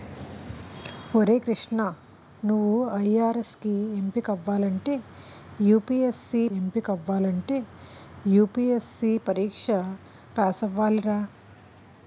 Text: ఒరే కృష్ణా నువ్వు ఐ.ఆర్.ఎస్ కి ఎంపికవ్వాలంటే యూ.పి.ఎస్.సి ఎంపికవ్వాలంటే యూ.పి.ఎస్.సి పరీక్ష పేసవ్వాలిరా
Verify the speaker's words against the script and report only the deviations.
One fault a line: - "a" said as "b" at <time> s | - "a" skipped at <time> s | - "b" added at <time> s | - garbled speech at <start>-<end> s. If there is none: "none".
none